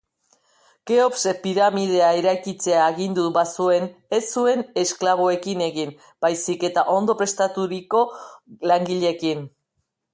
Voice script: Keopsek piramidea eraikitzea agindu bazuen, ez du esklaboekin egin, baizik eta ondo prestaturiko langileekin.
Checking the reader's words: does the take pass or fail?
fail